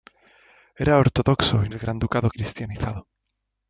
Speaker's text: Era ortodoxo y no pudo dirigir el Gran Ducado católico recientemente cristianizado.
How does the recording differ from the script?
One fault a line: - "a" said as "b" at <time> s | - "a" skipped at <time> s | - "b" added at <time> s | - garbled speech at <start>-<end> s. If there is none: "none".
- "no pudo dirigir" skipped at 1.7 s
- "católico recientemente" skipped at 2.3 s